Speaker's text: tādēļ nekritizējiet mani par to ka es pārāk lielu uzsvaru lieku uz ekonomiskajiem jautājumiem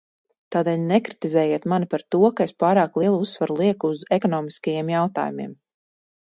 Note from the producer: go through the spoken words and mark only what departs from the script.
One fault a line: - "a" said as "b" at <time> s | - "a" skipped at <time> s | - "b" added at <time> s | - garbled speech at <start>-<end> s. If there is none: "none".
none